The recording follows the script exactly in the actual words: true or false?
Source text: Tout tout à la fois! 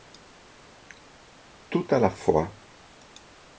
false